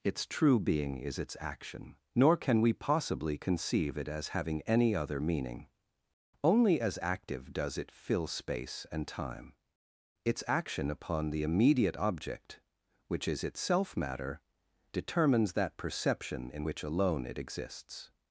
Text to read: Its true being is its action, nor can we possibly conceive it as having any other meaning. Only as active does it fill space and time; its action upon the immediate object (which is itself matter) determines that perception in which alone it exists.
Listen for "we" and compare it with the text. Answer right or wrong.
right